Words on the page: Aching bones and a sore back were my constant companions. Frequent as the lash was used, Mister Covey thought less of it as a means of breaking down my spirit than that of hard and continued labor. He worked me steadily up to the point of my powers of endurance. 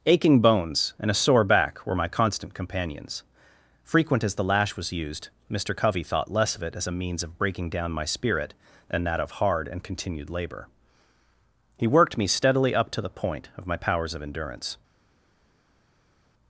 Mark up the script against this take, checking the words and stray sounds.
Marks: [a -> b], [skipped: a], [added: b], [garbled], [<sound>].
Aching bones and a sore back were my constant companions. Frequent as the lash was used, Mister Covey thought less of it as a means of breaking down my spirit than that of hard and continued labor. He worked me steadily up to the point of my powers of endurance.